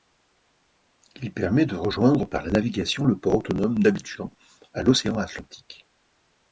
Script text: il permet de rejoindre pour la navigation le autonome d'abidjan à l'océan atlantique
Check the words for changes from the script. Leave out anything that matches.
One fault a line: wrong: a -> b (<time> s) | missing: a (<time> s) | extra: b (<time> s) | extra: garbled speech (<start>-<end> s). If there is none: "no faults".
wrong: pour -> par (2.2 s)
extra: port (3.2 s)